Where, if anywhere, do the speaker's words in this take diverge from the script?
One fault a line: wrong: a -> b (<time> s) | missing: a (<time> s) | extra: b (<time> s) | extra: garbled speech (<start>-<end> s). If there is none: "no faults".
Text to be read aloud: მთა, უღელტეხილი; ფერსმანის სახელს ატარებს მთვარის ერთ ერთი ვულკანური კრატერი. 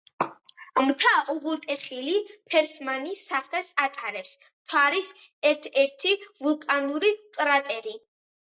no faults